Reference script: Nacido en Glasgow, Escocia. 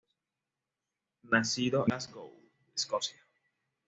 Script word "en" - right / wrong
wrong